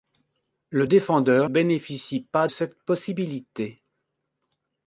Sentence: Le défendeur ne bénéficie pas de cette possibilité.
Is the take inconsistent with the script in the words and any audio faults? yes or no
yes